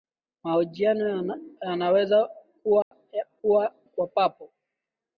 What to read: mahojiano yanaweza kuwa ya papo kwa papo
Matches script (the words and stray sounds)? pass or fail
fail